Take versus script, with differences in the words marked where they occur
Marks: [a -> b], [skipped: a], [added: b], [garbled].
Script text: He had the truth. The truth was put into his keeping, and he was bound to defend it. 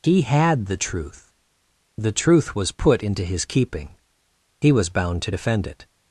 He had the truth. The truth was put into his keeping, [skipped: and] he was bound to defend it.